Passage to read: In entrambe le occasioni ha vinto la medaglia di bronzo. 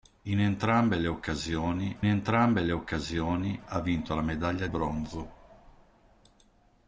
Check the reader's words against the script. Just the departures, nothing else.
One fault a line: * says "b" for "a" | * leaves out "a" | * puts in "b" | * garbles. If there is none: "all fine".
* puts in "entrambe le occasioni"
* leaves out "di"